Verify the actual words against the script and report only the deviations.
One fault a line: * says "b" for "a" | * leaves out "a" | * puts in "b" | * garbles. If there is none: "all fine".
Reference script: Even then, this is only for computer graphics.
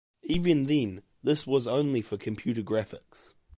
* says "was" for "is"